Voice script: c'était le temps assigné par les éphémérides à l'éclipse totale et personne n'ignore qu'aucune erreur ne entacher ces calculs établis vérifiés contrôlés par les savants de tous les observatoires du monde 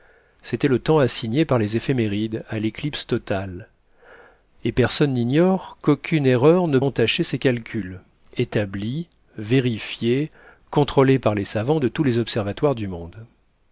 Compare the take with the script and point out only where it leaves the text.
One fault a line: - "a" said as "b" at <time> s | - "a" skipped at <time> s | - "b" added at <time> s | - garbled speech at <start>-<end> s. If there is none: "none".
none